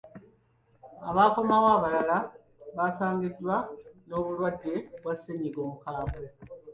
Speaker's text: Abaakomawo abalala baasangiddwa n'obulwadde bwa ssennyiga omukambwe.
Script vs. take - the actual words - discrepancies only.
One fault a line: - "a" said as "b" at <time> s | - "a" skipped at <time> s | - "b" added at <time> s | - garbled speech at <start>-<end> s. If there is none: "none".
none